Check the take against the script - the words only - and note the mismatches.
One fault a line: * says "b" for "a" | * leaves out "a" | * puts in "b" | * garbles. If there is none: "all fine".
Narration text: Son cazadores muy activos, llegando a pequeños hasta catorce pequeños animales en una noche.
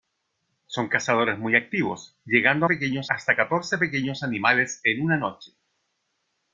all fine